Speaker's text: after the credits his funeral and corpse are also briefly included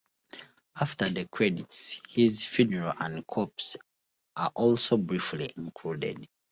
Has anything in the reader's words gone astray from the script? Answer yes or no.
no